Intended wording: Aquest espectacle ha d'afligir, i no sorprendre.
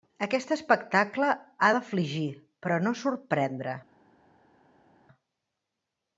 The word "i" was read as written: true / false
false